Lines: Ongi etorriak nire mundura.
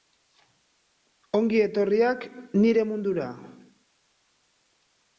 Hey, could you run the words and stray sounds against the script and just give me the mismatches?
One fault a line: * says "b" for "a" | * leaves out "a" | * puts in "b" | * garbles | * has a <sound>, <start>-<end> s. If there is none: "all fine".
all fine